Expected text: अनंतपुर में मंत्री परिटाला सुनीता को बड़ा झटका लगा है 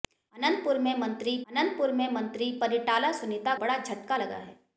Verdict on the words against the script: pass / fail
fail